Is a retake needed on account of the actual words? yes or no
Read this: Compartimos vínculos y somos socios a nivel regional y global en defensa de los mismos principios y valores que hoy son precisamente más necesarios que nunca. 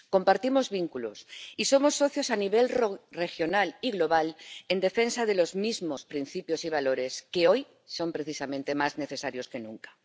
no